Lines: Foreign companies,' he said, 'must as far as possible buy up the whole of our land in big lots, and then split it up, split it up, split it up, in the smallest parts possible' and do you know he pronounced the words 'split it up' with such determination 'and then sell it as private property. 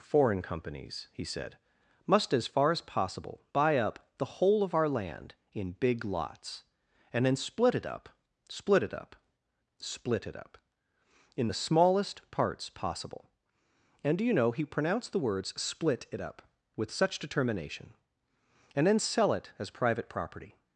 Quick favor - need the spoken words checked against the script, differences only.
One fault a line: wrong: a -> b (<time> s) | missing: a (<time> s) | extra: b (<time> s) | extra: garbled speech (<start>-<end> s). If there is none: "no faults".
no faults